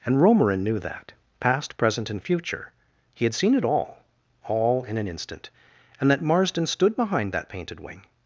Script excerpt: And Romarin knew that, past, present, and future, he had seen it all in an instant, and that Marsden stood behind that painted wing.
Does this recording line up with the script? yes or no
no